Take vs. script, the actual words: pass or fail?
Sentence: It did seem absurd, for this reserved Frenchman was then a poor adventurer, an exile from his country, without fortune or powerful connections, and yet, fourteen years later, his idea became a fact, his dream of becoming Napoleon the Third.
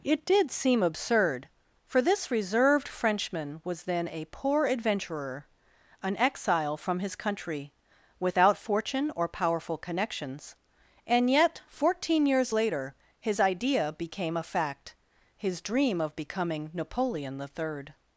pass